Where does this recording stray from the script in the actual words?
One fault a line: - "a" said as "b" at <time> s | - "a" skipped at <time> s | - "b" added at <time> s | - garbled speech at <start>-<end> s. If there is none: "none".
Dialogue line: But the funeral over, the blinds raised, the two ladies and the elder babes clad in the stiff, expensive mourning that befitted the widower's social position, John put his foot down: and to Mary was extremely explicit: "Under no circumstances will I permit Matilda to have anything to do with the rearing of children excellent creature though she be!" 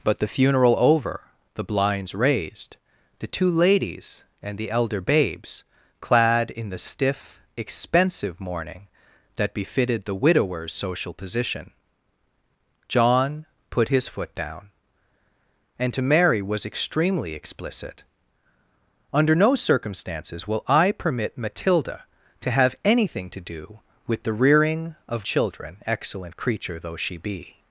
none